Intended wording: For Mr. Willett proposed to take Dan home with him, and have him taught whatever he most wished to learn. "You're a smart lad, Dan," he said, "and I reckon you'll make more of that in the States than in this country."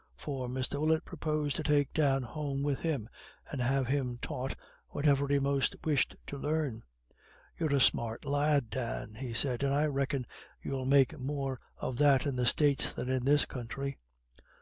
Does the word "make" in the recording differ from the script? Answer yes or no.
no